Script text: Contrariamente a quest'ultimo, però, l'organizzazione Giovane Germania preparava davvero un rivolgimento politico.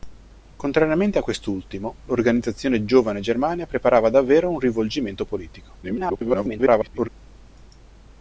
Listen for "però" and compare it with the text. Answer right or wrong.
wrong